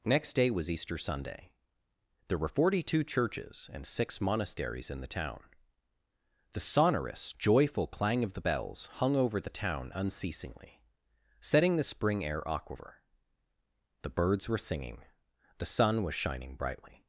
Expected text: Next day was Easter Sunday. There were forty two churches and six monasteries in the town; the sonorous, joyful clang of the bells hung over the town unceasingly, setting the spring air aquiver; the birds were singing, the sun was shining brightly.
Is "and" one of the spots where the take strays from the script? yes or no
no